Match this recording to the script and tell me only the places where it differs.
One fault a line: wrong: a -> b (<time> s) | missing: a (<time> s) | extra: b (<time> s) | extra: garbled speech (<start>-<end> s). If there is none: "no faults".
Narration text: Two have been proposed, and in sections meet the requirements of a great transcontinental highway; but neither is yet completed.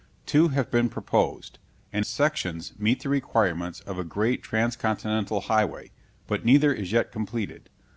missing: in (2.0 s)